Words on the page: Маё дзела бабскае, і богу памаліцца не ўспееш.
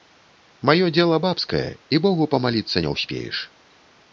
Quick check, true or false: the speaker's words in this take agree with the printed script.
true